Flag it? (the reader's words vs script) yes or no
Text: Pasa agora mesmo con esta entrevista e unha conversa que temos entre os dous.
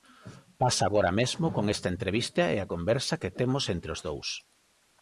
yes